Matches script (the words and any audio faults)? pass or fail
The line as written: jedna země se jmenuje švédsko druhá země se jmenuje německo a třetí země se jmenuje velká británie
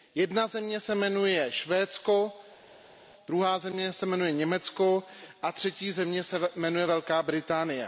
pass